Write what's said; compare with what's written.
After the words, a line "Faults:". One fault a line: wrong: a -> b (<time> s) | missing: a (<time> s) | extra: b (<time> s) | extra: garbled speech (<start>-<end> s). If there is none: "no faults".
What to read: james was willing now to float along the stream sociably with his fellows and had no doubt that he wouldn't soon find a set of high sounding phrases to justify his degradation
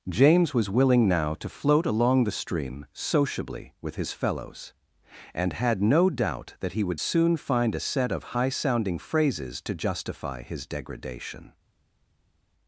james was willing now to float along the stream sociably with his fellows and had no doubt that he would soon find a set of high sounding phrases to justify his degradation
Faults:
wrong: wouldn't -> would (6.8 s)